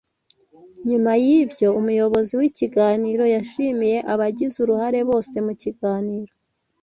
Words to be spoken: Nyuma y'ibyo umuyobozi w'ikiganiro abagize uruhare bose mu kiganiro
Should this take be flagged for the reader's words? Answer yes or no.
yes